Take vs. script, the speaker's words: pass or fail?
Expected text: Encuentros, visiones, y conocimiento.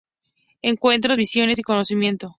pass